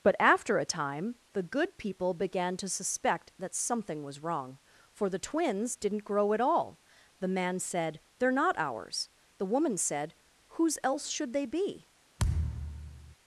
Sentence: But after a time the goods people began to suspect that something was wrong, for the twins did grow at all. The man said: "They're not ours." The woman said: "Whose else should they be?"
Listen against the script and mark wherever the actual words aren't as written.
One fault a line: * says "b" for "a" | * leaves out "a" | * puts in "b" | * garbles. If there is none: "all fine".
* says "good" for "goods"
* says "didn't" for "did"